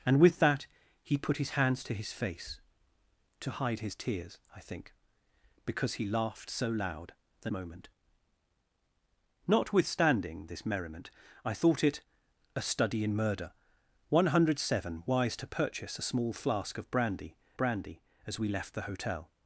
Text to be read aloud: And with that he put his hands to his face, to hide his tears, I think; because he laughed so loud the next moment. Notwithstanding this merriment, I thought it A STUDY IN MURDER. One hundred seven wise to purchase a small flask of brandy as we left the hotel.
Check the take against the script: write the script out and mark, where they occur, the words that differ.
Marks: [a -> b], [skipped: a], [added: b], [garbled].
And with that he put his hands to his face, to hide his tears, I think; because he laughed so loud the [skipped: next] moment. Notwithstanding this merriment, I thought it A STUDY IN MURDER. One hundred seven wise to purchase a small flask of brandy [added: brandy] as we left the hotel.